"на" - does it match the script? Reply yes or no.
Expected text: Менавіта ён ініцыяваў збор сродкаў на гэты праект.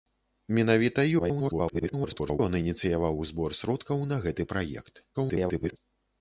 yes